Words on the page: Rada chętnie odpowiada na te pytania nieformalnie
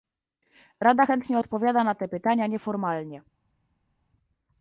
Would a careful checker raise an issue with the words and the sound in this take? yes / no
no